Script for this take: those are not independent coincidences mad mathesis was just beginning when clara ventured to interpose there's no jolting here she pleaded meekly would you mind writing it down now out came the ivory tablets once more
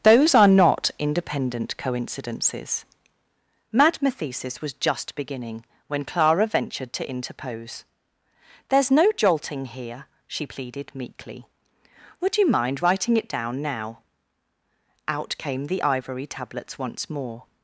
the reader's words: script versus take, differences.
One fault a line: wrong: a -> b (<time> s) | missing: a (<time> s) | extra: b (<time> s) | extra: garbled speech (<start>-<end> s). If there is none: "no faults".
no faults